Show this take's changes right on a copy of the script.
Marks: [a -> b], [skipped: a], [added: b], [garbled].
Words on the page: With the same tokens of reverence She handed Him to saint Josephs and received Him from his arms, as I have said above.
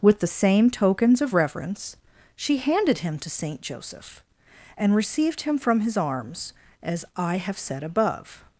With the same tokens of reverence She handed Him to saint [Josephs -> Joseph] and received Him from his arms, as I have said above.